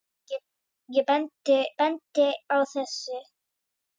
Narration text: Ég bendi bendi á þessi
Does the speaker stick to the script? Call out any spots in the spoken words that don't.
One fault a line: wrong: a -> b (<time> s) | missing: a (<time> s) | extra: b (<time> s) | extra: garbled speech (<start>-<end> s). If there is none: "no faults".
no faults